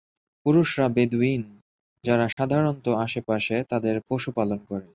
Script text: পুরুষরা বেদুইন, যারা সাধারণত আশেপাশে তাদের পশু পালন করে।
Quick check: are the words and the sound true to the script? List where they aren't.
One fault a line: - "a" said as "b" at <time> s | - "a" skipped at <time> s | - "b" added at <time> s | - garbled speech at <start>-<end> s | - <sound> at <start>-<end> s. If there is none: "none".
- dropout at 2.3-2.4 s